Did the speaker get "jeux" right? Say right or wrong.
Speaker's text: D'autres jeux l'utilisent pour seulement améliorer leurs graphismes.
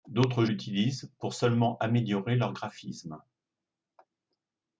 wrong